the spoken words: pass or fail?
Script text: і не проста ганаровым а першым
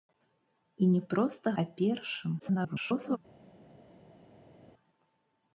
fail